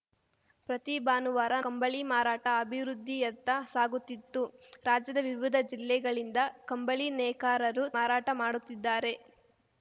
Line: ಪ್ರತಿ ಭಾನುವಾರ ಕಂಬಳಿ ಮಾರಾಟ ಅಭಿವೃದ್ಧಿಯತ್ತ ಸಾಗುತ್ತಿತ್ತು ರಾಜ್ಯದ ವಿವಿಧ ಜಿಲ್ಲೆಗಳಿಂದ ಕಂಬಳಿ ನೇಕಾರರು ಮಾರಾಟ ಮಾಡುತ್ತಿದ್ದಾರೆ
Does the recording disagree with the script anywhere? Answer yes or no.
no